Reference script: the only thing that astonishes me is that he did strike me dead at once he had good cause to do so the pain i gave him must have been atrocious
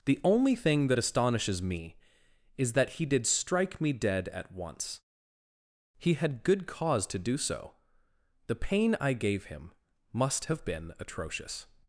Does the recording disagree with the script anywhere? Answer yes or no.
no